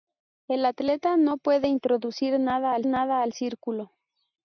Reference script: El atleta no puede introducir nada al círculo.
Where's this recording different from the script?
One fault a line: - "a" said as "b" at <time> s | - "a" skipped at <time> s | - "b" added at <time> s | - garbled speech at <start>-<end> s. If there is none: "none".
- "nada al" added at 2.9 s